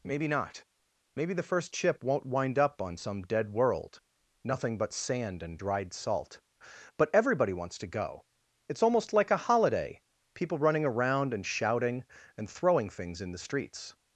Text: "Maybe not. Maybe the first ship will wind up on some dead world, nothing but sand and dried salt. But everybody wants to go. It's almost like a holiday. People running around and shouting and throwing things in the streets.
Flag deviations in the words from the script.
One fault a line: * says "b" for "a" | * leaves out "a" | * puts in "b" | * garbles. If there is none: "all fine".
* says "won't" for "will"